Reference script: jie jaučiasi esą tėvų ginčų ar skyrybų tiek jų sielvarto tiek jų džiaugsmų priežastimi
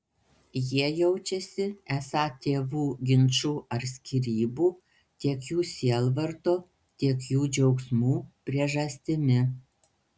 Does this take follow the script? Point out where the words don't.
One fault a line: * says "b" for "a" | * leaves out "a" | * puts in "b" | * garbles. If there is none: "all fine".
all fine